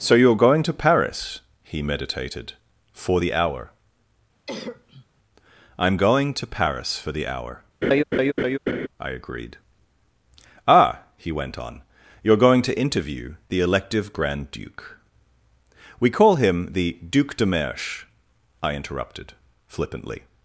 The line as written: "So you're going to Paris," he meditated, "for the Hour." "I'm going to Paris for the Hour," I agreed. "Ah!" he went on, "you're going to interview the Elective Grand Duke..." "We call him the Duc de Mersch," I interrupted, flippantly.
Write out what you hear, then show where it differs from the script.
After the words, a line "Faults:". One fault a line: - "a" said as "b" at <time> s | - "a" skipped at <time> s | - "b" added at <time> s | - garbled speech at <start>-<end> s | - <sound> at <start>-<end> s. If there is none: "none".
"So you're going to Paris," he meditated, "for the Hour." "I'm going to Paris for the Hour," I agreed. "Ah!" he went on, "you're going to interview the Elective Grand Duke..." "We call him the Duc de Mersch," I interrupted, flippantly.
Faults:
- cough at 4.5-5.1 s
- laugh at 7.8-8.9 s